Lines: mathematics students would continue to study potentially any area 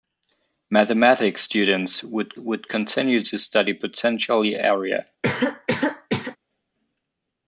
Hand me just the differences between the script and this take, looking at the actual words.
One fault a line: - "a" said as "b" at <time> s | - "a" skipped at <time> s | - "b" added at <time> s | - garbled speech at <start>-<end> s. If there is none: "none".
- "would" added at 2.4 s
- "any" skipped at 4.6 s